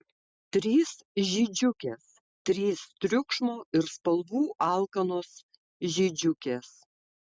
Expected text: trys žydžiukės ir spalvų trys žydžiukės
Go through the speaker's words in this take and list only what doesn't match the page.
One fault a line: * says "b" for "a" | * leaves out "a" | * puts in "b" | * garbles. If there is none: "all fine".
* puts in "trys triukšmo"
* says "alkanos" for "trys"